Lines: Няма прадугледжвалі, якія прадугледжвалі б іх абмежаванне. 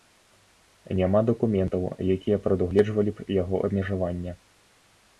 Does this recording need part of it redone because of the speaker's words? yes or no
yes